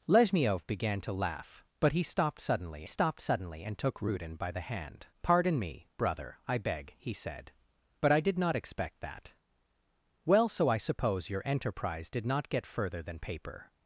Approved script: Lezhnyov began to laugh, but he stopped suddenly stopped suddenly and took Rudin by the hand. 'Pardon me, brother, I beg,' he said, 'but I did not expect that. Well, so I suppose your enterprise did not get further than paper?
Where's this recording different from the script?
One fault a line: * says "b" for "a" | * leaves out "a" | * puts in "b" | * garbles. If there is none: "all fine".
all fine